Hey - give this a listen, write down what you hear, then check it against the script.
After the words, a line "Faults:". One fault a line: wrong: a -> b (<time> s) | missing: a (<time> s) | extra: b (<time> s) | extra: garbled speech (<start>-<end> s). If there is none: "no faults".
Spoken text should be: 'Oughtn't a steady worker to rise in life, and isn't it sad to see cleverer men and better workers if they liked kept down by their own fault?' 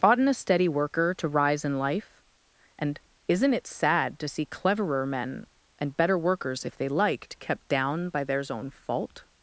'Oughtn't a steady worker to rise in life, and isn't it sad to see cleverer men and better workers if they liked kept down by theirs own fault?'
Faults:
wrong: their -> theirs (8.2 s)